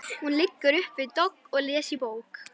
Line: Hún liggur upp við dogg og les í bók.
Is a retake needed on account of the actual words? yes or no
no